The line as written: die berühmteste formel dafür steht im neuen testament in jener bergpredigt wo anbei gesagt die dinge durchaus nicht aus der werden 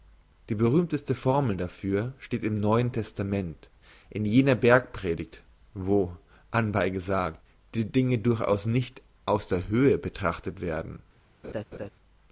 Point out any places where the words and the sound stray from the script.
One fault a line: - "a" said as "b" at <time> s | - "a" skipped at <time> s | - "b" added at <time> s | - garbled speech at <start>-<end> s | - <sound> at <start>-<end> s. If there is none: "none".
- "höhe betrachtet" added at 9.7 s
- laugh at 11.4-11.9 s